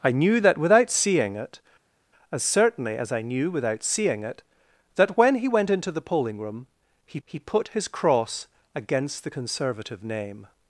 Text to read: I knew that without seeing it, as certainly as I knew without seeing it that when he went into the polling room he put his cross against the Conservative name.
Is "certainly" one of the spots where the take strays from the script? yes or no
no